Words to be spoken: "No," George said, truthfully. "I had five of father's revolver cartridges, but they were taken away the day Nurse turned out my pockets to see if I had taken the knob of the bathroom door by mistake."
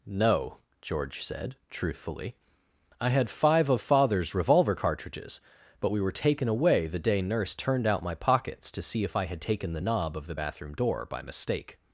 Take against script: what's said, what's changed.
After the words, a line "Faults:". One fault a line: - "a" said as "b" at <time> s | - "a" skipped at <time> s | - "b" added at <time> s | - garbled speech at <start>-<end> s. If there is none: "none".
"No," George said, truthfully. "I had five of father's revolver cartridges, but we were taken away the day Nurse turned out my pockets to see if I had taken the knob of the bathroom door by mistake."
Faults:
- "they" said as "we" at 5.9 s